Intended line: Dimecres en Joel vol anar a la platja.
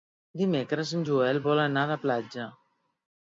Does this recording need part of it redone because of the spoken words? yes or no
no